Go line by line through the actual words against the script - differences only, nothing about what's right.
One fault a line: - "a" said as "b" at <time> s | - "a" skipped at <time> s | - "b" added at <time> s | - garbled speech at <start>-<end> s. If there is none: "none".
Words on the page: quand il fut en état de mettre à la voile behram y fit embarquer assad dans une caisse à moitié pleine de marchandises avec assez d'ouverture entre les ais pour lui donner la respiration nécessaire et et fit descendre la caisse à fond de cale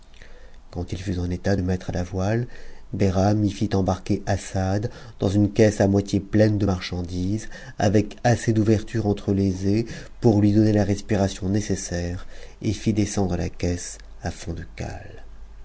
- "et" skipped at 12.7 s